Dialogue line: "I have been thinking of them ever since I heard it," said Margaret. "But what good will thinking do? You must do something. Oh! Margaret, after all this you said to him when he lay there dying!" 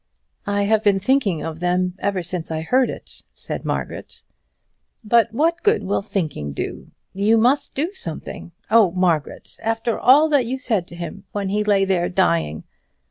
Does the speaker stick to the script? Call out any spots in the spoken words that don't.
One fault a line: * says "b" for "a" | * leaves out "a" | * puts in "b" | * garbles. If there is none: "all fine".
* says "that" for "this"